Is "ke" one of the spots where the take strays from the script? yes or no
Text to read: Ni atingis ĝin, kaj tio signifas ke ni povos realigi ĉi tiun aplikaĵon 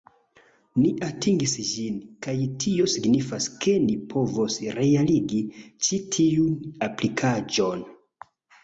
no